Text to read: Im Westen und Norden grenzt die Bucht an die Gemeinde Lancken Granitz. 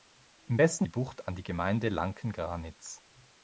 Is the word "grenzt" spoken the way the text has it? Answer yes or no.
no